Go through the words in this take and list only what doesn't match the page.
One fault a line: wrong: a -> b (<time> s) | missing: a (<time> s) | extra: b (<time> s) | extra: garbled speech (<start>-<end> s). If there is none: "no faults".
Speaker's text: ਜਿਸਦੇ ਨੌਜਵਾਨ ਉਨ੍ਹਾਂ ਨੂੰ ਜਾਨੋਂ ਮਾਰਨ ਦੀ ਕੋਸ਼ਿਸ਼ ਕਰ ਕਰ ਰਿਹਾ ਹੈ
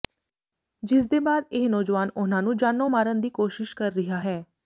extra: ਬਾਅਦ ਇਹ (1.2 s)
missing: ਕਰ (3.9 s)